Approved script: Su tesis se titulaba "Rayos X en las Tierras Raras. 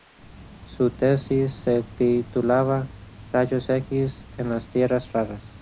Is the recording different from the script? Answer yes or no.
no